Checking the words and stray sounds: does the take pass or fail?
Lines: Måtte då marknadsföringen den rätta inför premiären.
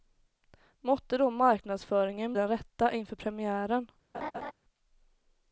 fail